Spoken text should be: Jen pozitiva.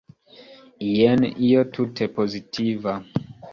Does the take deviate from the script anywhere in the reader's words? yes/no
yes